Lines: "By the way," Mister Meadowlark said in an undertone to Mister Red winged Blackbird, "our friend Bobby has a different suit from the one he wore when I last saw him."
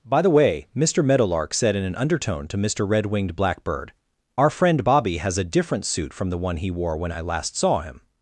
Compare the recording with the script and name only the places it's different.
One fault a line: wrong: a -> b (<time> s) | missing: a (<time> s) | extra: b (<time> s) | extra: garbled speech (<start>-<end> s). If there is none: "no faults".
no faults